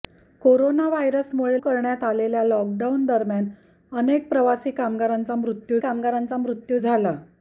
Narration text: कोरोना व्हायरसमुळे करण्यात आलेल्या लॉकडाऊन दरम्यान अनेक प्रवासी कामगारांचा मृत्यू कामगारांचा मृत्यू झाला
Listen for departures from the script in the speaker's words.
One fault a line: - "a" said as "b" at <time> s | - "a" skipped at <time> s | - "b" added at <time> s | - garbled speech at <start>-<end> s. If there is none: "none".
none